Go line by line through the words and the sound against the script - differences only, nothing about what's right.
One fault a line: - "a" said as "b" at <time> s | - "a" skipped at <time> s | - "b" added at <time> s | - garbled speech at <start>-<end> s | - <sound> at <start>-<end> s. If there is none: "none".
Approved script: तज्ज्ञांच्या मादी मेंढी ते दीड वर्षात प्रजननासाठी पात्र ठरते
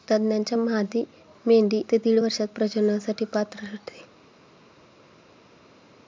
none